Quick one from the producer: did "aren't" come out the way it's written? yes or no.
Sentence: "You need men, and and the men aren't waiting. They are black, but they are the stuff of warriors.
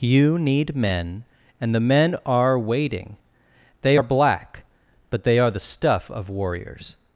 no